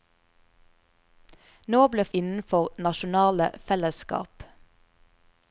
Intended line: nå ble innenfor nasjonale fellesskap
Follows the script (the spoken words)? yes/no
yes